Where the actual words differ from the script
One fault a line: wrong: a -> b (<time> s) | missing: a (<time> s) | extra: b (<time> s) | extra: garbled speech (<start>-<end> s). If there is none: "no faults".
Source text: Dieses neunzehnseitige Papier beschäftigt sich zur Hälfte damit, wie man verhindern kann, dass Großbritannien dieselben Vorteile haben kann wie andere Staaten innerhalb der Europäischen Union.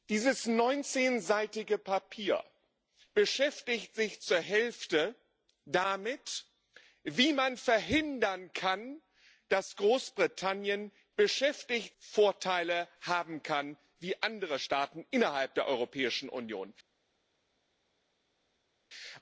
wrong: dieselben -> beschäftigt (11.2 s)